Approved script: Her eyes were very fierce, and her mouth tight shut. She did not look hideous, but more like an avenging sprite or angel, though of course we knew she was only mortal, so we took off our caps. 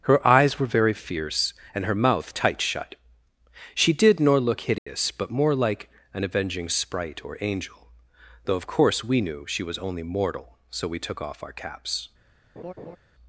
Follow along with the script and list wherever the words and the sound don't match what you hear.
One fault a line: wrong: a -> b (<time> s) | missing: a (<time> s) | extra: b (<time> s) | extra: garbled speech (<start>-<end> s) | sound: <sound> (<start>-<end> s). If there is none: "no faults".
wrong: not -> nor (4.2 s)
sound: dropout (4.8-4.9 s)
sound: laugh (12.6-13.0 s)